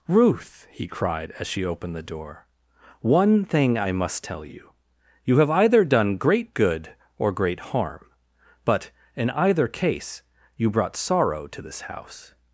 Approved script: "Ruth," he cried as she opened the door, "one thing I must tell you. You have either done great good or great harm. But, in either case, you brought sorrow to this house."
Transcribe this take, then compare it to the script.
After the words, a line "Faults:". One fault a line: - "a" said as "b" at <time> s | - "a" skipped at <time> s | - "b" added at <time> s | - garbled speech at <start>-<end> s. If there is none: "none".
"Ruth," he cried as she opened the door, "one thing I must tell you. You have either done great good or great harm. But, in either case, you brought sorrow to this house."
Faults:
none